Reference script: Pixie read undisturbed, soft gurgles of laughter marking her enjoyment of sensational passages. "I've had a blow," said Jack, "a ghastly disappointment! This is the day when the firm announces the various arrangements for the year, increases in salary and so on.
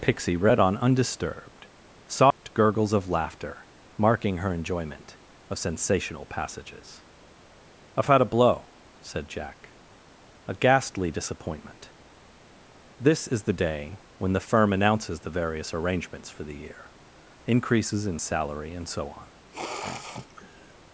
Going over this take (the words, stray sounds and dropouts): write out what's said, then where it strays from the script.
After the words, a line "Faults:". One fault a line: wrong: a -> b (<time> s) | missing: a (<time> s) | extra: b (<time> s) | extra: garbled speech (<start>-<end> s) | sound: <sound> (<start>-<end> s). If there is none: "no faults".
Pixie read on undisturbed, soft gurgles of laughter marking her enjoyment of sensational passages. "I've had a blow," said Jack, "a ghastly disappointment! This is the day when the firm announces the various arrangements for the year, increases in salary and so on.
Faults:
extra: on (0.6 s)
sound: dropout (2.3-2.4 s)
sound: sniff (19.5-20.7 s)